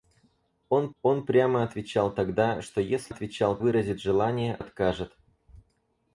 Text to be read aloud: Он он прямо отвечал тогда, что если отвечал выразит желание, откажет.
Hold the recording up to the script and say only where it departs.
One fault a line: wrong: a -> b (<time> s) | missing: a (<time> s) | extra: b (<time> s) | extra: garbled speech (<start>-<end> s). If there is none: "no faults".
no faults